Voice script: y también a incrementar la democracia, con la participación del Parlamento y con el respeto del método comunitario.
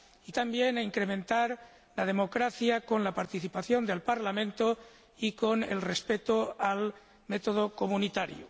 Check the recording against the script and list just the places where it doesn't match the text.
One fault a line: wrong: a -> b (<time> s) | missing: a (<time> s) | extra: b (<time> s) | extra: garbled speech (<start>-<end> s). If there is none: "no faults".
no faults